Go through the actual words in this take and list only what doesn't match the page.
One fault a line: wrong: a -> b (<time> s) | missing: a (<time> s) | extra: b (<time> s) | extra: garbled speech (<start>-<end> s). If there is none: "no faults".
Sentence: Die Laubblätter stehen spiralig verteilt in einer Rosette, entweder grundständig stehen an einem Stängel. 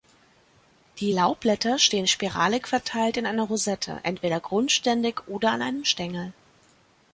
wrong: stehen -> oder (5.3 s)